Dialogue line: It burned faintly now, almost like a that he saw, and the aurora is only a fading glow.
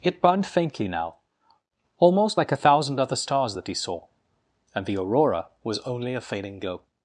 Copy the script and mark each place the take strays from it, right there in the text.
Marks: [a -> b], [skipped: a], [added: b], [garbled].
It burned faintly now, almost like a [added: thousand other stars] that he saw, and the aurora [is -> was] only a fading glow.